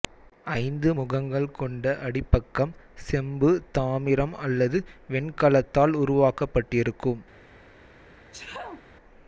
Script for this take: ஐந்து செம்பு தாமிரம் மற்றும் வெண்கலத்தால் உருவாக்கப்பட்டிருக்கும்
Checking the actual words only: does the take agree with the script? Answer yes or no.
no